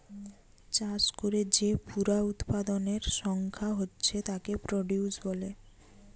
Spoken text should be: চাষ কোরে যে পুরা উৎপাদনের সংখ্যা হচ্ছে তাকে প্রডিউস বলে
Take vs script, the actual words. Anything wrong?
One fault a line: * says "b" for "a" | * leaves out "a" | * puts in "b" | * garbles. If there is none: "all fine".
all fine